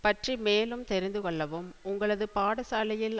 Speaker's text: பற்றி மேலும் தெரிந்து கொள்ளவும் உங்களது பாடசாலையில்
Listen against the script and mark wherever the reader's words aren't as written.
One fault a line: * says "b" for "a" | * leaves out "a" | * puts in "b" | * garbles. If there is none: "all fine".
all fine